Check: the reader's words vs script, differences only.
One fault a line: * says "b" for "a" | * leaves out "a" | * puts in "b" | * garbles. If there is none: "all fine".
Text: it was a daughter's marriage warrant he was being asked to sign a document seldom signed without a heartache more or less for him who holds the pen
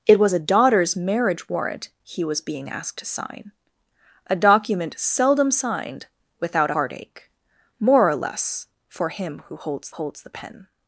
* leaves out "a"
* puts in "holds"